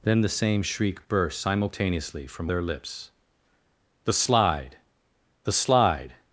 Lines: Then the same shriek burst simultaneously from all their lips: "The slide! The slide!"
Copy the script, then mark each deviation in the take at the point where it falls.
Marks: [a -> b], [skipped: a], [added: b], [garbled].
Then the same shriek burst simultaneously from [skipped: all] their lips: "The slide! The slide!"